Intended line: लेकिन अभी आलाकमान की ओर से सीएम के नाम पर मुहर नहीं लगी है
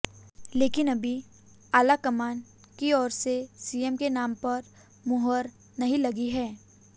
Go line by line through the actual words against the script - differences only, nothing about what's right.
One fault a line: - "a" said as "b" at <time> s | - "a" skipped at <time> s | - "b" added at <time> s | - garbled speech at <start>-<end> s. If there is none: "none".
none